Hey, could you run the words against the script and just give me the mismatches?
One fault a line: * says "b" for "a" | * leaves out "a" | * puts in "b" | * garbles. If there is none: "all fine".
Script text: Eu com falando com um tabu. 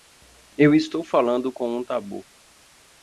* says "estou" for "com"